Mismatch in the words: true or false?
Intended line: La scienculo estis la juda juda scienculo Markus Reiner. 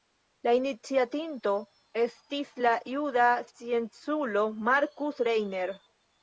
true